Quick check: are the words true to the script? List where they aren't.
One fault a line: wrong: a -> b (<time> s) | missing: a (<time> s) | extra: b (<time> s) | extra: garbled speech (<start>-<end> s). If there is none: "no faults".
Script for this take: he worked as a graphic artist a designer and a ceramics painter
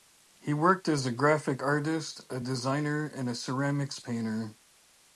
no faults